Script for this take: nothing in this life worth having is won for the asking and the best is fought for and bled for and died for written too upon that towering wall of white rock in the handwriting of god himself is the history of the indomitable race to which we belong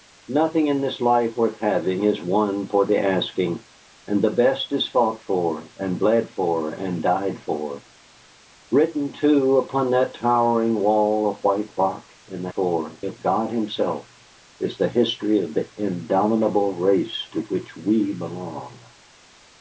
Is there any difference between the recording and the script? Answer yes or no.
yes